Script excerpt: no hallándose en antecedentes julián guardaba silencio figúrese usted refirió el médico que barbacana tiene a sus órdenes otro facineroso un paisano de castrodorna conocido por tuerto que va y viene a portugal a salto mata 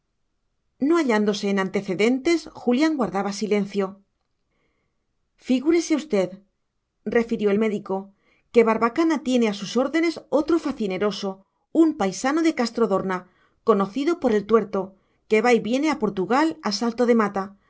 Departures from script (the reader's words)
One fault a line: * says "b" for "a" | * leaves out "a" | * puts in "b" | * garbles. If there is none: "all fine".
* puts in "el"
* puts in "de"